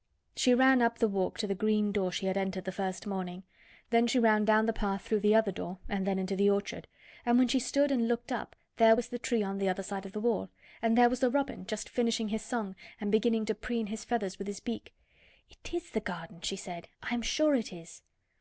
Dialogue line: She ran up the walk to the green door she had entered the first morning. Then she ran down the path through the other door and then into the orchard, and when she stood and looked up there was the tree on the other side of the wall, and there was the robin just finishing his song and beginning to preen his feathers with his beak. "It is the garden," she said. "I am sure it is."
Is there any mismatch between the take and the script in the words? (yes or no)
no